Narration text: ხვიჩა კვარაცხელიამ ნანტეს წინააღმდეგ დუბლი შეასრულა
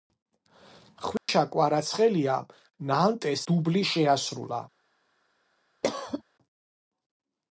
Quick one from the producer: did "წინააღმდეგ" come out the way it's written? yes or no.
no